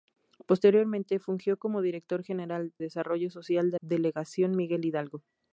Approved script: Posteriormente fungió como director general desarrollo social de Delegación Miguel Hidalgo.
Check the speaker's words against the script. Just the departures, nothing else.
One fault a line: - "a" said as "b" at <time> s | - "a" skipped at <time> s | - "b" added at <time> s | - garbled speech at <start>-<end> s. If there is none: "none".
none